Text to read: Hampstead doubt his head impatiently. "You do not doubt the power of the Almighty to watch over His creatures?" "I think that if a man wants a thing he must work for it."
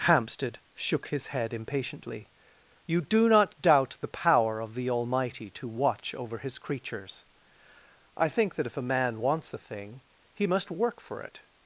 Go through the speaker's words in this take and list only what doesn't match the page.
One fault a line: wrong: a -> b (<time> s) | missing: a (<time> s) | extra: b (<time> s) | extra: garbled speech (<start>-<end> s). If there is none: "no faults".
wrong: doubt -> shook (0.7 s)